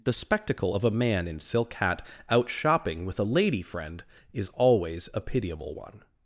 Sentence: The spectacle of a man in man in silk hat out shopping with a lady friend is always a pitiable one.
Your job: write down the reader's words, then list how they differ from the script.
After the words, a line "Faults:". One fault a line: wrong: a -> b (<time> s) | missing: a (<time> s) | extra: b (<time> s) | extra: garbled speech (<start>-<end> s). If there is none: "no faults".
The spectacle of a man in silk hat out shopping with a lady friend is always a pitiable one.
Faults:
missing: man in (1.4 s)